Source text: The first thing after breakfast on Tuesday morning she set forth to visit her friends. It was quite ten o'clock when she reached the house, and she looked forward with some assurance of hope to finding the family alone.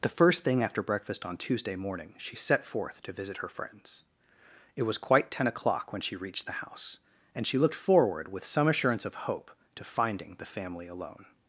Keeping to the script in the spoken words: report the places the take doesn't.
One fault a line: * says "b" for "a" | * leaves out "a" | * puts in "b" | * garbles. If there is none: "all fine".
all fine